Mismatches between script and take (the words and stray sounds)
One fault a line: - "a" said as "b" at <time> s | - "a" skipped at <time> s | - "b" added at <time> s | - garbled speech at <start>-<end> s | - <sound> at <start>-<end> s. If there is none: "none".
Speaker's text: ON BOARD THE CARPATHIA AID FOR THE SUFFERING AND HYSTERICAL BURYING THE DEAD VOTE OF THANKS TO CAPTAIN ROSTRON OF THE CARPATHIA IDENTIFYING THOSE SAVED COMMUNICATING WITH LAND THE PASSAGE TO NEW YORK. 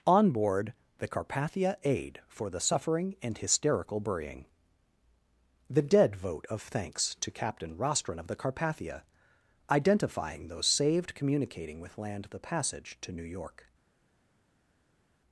none